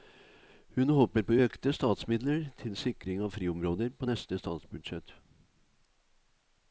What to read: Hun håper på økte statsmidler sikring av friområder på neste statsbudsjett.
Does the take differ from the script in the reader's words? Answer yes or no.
yes